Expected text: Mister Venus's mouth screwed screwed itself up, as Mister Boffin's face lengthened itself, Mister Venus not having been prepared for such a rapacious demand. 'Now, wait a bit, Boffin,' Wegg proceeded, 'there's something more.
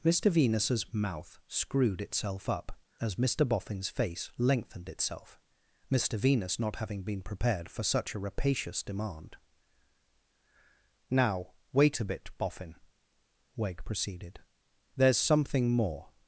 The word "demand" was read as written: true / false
true